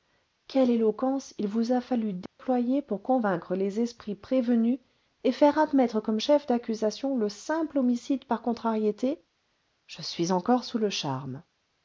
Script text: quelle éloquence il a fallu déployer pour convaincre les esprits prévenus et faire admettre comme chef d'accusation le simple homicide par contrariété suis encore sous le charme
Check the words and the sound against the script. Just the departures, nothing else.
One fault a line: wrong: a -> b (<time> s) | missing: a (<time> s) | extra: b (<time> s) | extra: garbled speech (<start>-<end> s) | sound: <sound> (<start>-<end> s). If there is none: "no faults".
extra: vous (1.5 s)
sound: dropout (2.3-2.4 s)
extra: je (9.9 s)